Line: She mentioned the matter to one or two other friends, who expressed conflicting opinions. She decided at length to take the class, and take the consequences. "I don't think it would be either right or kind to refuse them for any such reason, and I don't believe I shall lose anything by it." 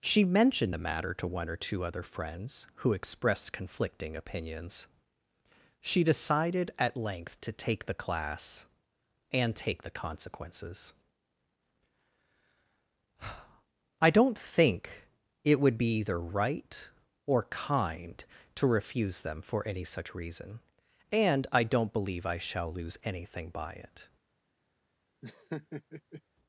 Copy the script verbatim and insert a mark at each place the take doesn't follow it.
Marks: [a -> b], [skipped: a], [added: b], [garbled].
She mentioned the matter to one or two other friends, who expressed conflicting opinions. She decided at length to take the class, and take the consequences. "I don't think it would be either right or kind to refuse them for any such reason, and I don't believe I shall lose anything by it."